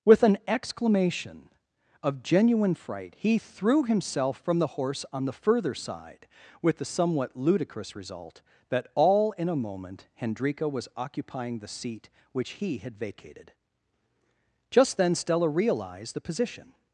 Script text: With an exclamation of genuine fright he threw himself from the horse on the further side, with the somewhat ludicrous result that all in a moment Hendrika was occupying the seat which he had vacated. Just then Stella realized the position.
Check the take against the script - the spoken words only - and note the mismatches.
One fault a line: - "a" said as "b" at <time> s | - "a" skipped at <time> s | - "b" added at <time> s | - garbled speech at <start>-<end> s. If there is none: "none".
none